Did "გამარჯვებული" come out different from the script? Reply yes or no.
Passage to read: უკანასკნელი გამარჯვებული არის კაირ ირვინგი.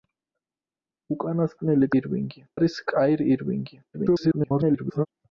yes